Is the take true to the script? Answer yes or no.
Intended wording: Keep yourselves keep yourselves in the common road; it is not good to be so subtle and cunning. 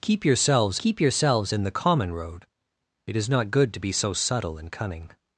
yes